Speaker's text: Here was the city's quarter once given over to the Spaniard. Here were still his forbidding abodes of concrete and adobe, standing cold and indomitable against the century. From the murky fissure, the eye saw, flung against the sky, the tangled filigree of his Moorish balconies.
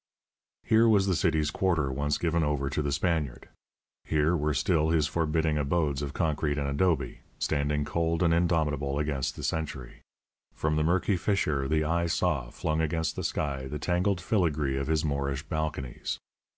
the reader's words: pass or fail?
pass